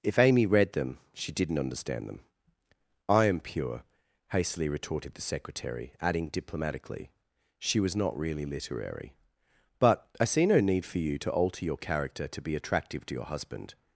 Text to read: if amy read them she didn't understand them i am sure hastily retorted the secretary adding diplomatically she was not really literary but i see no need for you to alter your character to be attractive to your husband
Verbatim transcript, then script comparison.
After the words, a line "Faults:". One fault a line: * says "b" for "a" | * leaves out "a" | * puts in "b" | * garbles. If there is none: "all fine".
if amy read them she didn't understand them i am pure hastily retorted the secretary adding diplomatically she was not really literary but i see no need for you to alter your character to be attractive to your husband
Faults:
* says "pure" for "sure"